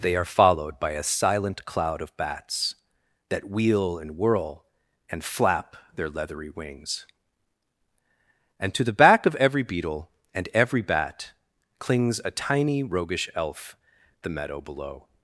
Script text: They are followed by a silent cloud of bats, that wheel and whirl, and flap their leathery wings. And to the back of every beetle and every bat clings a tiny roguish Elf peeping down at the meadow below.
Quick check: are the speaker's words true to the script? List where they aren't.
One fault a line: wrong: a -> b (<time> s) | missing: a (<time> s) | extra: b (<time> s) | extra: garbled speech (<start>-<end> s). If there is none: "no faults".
missing: peeping down at (13.8 s)